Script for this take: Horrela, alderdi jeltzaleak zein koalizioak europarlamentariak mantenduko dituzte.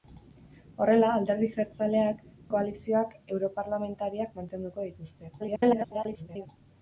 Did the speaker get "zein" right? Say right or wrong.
wrong